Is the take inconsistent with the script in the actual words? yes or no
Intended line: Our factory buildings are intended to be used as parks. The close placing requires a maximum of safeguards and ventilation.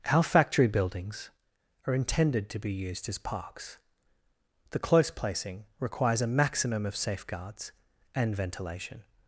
no